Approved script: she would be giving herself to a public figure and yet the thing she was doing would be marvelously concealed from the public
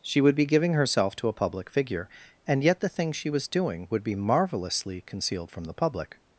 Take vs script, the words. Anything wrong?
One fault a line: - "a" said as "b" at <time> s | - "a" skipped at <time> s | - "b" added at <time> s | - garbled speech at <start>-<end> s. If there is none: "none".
none